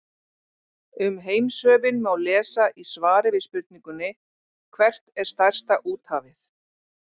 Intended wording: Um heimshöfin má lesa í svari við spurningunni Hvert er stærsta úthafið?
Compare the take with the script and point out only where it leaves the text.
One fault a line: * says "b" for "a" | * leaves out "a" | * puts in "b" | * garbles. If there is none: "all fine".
all fine